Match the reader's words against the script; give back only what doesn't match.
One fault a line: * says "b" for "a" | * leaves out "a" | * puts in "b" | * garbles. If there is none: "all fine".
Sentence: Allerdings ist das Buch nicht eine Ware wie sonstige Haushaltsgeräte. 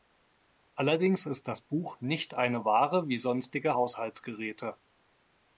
all fine